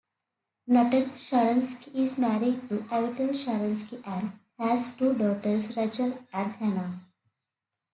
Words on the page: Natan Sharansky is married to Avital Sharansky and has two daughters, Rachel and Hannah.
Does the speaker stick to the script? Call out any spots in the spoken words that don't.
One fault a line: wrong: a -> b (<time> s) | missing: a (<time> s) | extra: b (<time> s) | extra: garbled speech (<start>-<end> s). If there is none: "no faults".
no faults